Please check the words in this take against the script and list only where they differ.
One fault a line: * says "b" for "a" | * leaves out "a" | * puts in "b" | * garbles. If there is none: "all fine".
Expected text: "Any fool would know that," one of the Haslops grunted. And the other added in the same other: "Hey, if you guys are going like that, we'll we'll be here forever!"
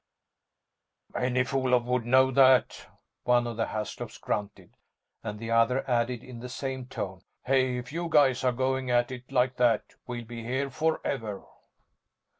* says "tone" for "other"
* puts in "at it"
* leaves out "we'll"